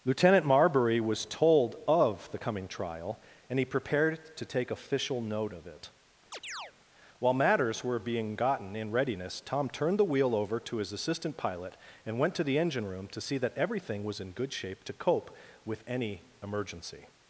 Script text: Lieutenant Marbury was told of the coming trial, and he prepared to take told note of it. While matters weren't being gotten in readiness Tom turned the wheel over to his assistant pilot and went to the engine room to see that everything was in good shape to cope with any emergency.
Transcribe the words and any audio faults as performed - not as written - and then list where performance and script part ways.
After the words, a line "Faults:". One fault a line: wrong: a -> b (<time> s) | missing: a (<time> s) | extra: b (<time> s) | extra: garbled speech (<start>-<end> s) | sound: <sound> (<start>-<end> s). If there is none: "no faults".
Lieutenant Marbury was told of the coming trial, and he prepared to take official note of it. While matters were being gotten in readiness Tom turned the wheel over to his assistant pilot and went to the engine room to see that everything was in good shape to cope with any emergency.
Faults:
wrong: told -> official (4.7 s)
sound: chirp (6.3-6.7 s)
wrong: weren't -> were (7.8 s)